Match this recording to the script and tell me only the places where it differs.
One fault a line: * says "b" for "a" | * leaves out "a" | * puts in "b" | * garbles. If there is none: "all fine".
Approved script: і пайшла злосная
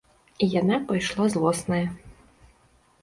* puts in "яна"